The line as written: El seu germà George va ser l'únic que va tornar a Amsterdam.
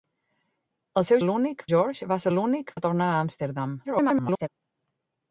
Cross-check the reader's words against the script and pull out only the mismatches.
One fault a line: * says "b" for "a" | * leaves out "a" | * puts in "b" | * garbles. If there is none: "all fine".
* says "l'únic" for "germà"
* leaves out "que"
* garbles